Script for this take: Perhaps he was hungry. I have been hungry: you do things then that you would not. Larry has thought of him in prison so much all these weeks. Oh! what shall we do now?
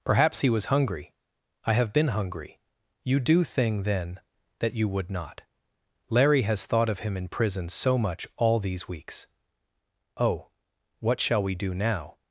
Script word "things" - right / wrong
wrong